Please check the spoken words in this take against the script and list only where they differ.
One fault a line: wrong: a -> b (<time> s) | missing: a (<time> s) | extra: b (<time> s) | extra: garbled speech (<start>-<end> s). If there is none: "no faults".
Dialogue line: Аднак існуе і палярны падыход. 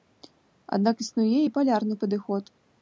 no faults